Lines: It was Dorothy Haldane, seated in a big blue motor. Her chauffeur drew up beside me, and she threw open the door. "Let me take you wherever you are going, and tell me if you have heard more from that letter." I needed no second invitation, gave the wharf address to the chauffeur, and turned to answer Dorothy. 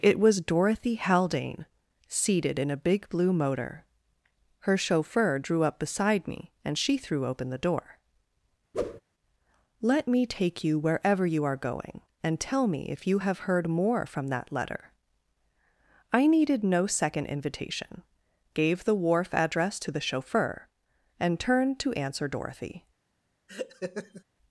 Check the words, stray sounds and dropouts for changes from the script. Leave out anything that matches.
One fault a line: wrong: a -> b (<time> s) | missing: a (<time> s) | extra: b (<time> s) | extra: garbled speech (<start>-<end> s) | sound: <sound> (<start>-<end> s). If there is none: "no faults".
sound: whoosh (8.7-9.0 s)
sound: laugh (23.5-24.2 s)